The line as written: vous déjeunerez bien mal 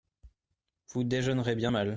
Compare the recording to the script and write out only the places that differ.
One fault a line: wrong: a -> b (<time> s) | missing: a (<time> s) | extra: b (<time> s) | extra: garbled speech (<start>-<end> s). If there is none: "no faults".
no faults